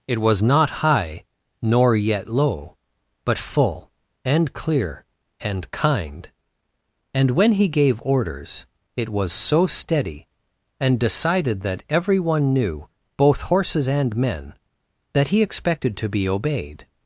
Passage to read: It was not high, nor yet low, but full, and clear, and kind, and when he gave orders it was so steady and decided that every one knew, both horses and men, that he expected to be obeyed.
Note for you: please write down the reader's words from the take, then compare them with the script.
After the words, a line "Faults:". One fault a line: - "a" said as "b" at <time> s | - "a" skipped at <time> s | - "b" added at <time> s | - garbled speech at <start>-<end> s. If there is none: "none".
It was not high, nor yet low, but full, and clear, and kind, and when he gave orders it was so steady and decided that every one knew, both horses and men, that he expected to be obeyed.
Faults:
none